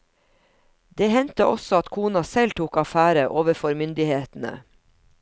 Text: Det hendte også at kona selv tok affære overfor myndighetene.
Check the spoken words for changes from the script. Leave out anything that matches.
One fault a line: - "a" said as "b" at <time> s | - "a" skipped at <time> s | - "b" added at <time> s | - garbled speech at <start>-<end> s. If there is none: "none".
none